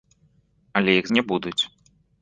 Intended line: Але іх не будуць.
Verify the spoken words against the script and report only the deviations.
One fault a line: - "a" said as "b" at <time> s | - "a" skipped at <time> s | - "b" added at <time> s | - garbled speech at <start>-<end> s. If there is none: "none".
none